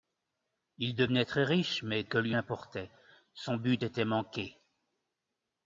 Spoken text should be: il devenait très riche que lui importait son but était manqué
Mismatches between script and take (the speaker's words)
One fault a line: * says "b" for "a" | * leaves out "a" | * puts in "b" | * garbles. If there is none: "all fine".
* puts in "mais"